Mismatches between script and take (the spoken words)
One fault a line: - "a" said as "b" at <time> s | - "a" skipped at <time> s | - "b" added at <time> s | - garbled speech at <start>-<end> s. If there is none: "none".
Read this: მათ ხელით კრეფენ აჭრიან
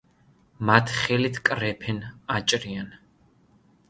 none